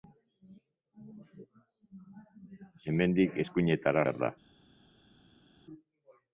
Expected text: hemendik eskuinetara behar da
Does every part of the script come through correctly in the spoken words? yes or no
yes